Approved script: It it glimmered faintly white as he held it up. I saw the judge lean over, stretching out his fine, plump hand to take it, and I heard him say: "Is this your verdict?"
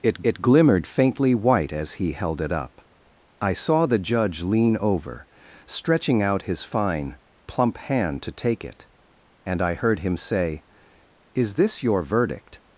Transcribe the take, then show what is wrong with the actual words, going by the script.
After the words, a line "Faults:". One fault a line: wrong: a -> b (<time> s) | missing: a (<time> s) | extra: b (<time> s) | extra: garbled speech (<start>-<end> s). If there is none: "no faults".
It it glimmered faintly white as he held it up. I saw the judge lean over, stretching out his fine, plump hand to take it, and I heard him say: "Is this your verdict?"
Faults:
no faults